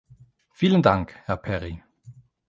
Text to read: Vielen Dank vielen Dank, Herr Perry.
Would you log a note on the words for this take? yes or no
yes